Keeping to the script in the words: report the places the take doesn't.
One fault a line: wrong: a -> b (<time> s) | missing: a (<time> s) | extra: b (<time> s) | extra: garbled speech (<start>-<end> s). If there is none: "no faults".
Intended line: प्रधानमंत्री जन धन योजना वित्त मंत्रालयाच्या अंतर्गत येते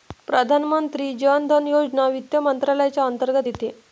no faults